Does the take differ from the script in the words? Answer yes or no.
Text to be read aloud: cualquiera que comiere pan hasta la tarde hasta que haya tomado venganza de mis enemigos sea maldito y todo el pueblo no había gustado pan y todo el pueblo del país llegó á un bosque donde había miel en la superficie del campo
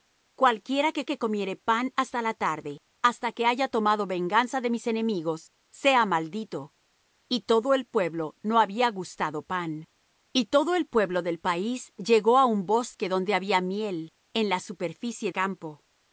yes